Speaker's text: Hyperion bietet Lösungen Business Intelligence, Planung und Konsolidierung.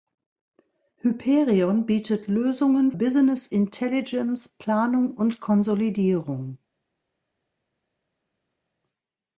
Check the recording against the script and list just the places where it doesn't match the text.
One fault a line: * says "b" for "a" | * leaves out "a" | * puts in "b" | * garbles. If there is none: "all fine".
all fine